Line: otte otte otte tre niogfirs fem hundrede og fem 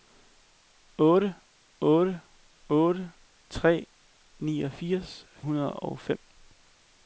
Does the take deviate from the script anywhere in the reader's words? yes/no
yes